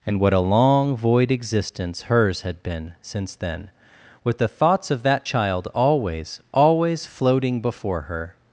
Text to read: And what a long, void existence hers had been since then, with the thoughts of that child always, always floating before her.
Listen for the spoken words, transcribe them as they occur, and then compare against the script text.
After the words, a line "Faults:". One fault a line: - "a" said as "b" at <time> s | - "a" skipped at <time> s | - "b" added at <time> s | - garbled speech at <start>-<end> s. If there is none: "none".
And what a long, void existence hers had been since then, with the thoughts of that child always, always floating before her.
Faults:
none